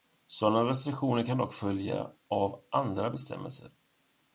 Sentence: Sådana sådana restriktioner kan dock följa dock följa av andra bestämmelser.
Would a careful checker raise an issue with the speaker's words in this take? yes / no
yes